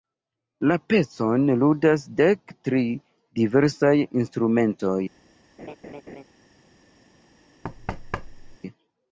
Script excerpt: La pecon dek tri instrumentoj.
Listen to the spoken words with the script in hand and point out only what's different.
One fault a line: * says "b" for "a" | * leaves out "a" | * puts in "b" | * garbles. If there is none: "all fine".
* puts in "ludas"
* puts in "diversaj"